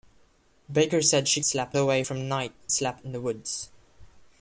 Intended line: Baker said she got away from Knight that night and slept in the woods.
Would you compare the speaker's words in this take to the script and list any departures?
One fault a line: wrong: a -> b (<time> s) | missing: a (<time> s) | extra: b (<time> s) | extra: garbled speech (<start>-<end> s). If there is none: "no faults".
wrong: got -> slept (1.4 s)
missing: that night and (2.5 s)